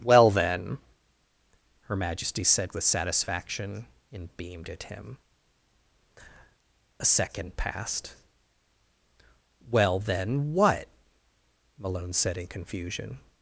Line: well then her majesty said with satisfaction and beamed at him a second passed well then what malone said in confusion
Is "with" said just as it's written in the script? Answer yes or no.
yes